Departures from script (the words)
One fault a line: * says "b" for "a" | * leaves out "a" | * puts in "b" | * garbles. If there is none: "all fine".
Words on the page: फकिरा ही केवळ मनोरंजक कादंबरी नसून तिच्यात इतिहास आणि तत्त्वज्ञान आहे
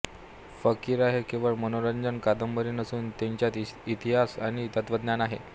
all fine